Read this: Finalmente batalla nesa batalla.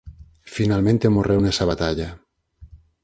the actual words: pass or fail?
fail